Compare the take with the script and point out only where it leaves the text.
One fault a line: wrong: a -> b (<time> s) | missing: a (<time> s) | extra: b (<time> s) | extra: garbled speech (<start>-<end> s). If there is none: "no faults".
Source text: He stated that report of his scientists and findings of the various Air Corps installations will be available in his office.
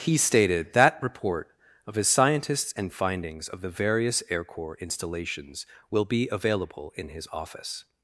no faults